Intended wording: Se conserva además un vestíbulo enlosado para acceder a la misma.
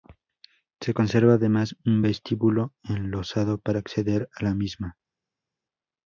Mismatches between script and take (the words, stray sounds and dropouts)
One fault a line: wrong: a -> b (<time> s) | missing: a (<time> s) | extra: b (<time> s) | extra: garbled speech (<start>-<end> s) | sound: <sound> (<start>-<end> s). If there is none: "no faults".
no faults